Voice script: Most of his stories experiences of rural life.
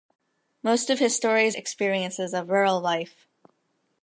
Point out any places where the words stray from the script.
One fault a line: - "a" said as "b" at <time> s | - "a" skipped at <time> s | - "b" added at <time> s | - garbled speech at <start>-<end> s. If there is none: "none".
none